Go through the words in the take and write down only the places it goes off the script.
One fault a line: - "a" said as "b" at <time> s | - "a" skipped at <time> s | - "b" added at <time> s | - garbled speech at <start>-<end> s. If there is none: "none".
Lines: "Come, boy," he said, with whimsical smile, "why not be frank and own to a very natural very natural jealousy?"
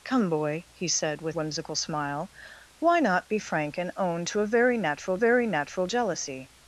none